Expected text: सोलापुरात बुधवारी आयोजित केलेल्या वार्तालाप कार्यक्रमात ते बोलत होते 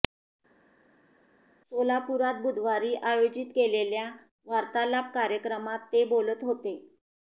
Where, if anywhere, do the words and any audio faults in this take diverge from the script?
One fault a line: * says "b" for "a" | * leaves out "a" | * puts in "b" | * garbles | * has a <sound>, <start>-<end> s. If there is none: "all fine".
all fine